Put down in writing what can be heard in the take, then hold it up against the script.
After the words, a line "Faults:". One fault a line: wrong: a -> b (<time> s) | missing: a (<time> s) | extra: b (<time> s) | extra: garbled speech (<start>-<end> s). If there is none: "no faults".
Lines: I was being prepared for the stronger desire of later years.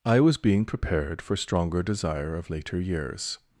I was being prepared for stronger desire of later years.
Faults:
missing: the (1.4 s)